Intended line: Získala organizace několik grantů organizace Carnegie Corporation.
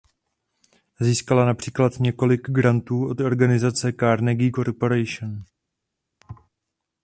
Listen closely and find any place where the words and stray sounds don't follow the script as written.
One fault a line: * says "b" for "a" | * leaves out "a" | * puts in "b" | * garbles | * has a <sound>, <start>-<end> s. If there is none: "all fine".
* says "například" for "organizace"
* puts in "od"
* has a thud, 6.2-6.5 s